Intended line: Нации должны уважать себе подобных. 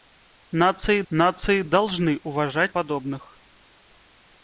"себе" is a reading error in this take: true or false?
true